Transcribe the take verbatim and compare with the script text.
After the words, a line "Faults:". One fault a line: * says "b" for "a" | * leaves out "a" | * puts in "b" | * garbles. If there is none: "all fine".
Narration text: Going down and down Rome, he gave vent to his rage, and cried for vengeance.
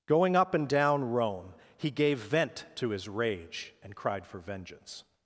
Going up and down Rome, he gave vent to his rage, and cried for vengeance.
Faults:
* says "up" for "down"